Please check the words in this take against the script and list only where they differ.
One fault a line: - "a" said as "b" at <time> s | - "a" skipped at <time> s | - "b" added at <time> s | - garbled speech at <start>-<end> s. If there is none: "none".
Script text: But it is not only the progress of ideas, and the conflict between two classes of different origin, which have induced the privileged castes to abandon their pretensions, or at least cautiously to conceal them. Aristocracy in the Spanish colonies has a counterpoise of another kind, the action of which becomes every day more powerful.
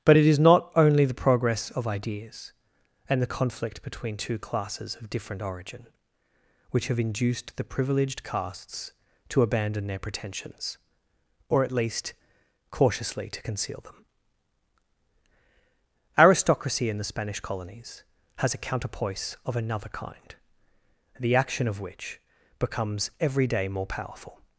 none